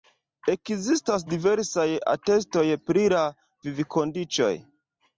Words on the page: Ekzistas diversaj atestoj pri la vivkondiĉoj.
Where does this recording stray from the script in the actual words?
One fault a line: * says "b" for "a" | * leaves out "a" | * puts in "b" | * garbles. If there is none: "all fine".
all fine